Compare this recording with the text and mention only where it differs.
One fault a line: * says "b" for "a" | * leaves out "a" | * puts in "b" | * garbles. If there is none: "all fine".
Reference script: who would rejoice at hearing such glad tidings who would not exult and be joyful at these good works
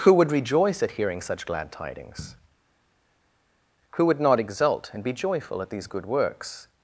all fine